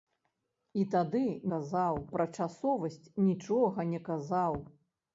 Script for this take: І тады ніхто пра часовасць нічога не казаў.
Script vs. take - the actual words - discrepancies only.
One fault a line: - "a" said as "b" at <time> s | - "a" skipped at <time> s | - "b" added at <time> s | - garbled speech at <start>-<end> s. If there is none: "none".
- "ніхто" said as "казаў" at 1.5 s